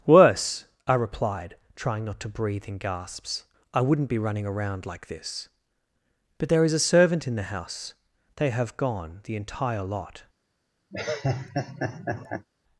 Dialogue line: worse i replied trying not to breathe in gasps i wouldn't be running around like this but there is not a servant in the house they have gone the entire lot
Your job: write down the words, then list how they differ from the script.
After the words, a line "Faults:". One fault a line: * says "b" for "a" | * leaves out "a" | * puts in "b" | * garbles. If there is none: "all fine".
worse i replied trying not to breathe in gasps i wouldn't be running around like this but there is a servant in the house they have gone the entire lot
Faults:
* leaves out "not"